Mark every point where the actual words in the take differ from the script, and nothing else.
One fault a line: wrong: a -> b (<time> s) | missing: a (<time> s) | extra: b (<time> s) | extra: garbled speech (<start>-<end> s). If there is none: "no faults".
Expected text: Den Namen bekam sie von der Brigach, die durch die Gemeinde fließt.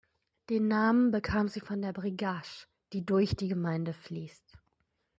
no faults